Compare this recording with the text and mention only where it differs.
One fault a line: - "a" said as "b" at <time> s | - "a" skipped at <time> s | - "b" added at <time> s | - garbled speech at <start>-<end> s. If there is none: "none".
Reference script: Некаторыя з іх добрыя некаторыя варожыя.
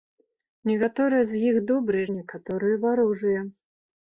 none